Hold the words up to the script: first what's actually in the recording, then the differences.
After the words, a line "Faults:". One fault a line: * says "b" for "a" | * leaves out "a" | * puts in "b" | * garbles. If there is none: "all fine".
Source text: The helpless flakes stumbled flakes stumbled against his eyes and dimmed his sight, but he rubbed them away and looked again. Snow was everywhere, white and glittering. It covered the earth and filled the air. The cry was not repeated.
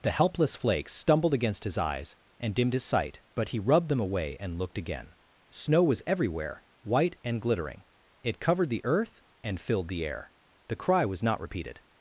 The helpless flakes stumbled against his eyes and dimmed his sight, but he rubbed them away and looked again. Snow was everywhere, white and glittering. It covered the earth and filled the air. The cry was not repeated.
Faults:
* leaves out "flakes stumbled"